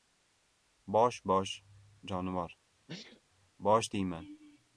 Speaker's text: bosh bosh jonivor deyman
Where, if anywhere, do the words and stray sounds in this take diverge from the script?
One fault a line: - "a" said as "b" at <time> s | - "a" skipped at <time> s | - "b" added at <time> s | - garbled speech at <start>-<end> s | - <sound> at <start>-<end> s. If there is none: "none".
- sneeze at 2.9-3.2 s
- "bosh" added at 3.6 s